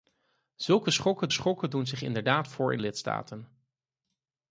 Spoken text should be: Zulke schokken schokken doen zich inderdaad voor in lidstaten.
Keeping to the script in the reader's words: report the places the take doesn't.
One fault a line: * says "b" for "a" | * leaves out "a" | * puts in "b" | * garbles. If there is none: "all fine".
all fine